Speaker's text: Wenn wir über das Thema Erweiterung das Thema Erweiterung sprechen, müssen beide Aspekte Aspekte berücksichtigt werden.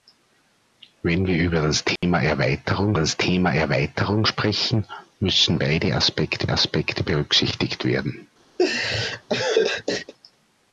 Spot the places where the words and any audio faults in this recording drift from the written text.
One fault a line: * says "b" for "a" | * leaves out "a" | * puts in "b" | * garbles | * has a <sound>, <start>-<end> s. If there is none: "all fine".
* has a dropout, 2.0-2.0 s
* has a laugh, 8.6-10.1 s